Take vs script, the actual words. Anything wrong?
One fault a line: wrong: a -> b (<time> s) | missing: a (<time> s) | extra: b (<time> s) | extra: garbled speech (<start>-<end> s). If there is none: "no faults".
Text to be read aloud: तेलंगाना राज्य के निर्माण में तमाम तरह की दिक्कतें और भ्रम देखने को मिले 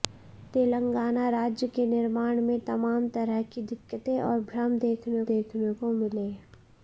extra: देखने (5.3 s)